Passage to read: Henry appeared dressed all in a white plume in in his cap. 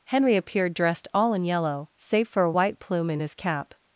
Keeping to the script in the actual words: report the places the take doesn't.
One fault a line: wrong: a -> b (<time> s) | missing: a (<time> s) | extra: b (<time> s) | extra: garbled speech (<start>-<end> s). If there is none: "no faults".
extra: yellow save for (1.4 s)
missing: in (3.2 s)